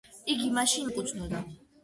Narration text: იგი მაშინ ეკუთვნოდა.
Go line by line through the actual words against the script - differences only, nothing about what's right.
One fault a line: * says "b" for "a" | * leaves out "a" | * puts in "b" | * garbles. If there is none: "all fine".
all fine